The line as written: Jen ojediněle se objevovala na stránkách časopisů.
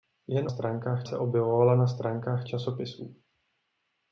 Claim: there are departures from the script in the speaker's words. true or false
true